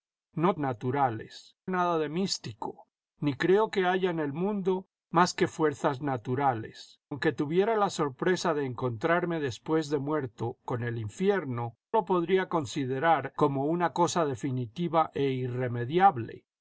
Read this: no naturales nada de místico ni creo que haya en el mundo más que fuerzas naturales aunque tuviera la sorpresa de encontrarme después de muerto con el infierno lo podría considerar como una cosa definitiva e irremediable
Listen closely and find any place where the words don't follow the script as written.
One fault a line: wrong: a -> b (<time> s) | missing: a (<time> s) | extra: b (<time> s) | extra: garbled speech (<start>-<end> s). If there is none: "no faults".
no faults